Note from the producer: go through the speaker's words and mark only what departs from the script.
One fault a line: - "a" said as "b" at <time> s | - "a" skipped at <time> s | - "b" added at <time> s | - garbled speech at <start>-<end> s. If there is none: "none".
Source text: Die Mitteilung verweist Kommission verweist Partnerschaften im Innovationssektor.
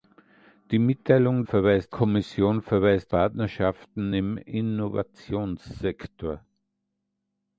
none